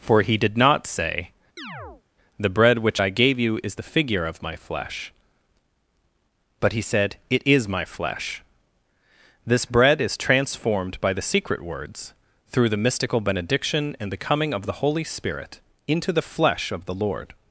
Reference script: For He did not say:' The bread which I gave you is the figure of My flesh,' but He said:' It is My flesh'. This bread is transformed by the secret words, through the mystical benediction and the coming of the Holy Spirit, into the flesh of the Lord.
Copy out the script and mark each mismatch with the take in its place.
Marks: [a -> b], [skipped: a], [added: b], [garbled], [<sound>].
For He did not say:' [chirp] The bread which I gave you is the figure of My flesh,' but He said:' It is My flesh'. This bread is transformed by the secret words, through the mystical benediction and the coming of the Holy Spirit, into the flesh of the Lord.